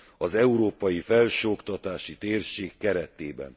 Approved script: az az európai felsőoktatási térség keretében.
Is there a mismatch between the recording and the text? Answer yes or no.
yes